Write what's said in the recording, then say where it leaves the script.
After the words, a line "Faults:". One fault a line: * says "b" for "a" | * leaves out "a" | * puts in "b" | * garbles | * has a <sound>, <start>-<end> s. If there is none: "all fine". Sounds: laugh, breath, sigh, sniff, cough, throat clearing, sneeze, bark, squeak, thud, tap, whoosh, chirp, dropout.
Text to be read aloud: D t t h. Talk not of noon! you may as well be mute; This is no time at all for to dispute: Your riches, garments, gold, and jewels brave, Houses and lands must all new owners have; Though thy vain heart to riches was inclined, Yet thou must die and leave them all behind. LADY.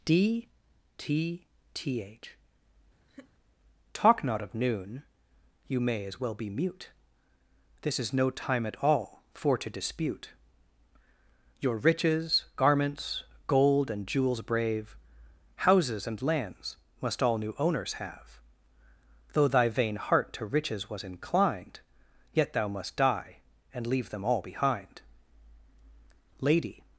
D t t h. Talk not of noon! you may as well be mute; This is no time at all for to dispute: Your riches, garments, gold, and jewels brave, Houses and lands must all new owners have; Though thy vain heart to riches was inclined, Yet thou must die and leave them all behind. LADY.
Faults:
* has a laugh, 3.1-3.3 s